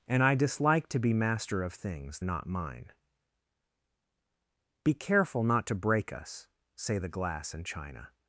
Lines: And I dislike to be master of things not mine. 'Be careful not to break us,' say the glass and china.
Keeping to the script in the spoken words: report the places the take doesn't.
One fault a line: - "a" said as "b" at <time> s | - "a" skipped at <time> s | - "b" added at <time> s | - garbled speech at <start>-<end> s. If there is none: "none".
none